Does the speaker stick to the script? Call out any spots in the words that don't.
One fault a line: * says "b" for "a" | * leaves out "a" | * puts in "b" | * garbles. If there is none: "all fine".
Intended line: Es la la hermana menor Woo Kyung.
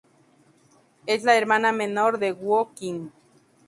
* leaves out "la"
* puts in "de"